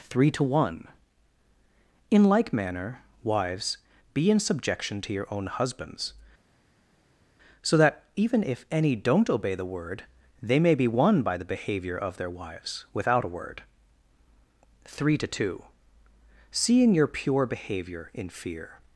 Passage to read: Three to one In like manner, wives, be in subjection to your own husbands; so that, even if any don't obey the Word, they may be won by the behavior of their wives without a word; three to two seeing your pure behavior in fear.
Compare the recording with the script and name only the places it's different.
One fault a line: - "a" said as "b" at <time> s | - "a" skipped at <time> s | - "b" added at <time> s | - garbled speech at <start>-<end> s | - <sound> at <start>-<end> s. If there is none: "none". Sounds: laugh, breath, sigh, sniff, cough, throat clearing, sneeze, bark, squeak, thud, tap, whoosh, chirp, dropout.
none